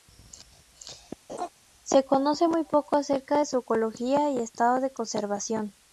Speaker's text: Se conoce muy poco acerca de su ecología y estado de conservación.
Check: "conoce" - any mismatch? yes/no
no